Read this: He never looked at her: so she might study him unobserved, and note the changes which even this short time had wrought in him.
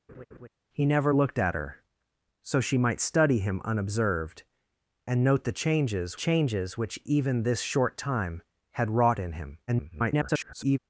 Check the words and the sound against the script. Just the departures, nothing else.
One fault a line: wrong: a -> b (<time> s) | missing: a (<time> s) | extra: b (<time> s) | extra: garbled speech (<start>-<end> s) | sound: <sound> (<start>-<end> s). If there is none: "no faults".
sound: laugh (0.1-0.5 s)
extra: changes (6.1 s)
extra: garbled speech (9.7-10.8 s)